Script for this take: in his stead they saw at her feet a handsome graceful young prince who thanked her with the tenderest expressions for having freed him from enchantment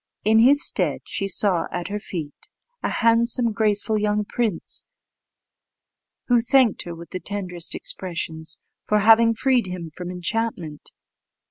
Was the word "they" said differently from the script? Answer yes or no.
yes